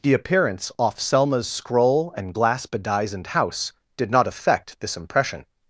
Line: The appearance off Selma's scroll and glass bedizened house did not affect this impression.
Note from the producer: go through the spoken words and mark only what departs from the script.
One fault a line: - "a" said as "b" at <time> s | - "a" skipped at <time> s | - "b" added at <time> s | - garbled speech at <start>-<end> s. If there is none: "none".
none